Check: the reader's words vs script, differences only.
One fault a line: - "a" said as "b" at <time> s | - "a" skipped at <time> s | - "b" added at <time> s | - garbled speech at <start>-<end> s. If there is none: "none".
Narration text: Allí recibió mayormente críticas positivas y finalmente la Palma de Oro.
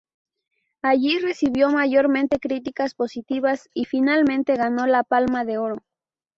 - "ganó" added at 4.5 s